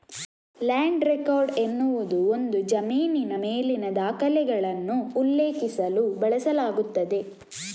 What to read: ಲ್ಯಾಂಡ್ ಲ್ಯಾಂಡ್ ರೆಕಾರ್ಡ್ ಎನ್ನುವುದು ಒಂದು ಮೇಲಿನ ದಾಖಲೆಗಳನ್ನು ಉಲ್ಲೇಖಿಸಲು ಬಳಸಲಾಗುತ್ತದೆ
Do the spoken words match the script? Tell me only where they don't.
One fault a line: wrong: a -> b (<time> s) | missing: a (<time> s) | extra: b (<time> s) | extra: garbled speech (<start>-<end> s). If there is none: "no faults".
missing: ಲ್ಯಾಂಡ್ (1.0 s)
extra: ಜಮೀನಿನ (2.6 s)